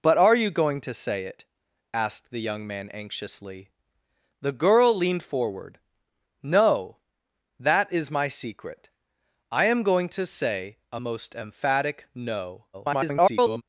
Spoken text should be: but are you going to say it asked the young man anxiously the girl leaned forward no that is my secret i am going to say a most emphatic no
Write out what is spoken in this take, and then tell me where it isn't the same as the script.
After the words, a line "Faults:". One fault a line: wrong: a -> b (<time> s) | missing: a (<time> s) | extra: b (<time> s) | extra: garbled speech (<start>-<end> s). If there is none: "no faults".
but are you going to say it asked the young man anxiously the girl leaned forward no that is my secret i am going to say a most emphatic no [garbled]
Faults:
extra: garbled speech (12.7-13.6 s)